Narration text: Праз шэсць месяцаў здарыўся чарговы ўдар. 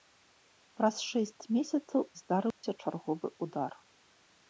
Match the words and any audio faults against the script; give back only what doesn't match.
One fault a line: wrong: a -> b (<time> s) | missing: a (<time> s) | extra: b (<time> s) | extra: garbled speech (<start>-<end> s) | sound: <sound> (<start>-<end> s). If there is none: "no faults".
sound: dropout (2.5-2.6 s)